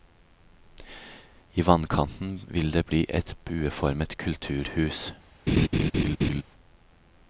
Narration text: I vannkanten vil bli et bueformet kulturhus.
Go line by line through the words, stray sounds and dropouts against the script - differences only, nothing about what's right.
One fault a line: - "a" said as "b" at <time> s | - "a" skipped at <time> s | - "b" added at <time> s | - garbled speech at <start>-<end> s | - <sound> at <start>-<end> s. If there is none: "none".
- "det" added at 2.7 s
- laugh at 5.5-6.4 s